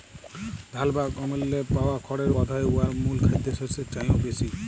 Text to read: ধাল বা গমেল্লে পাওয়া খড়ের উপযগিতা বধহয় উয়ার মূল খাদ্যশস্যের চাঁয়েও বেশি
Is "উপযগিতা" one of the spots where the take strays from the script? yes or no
yes